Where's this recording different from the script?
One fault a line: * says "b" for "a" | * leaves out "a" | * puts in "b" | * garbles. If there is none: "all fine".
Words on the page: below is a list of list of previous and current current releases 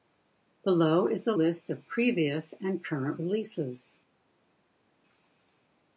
* leaves out "list of"
* leaves out "current"